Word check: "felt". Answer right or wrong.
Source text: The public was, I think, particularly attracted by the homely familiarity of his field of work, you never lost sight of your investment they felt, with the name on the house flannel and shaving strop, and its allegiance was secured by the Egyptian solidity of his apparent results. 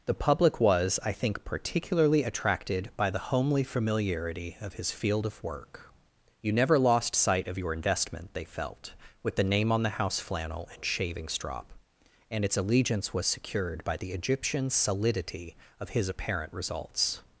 right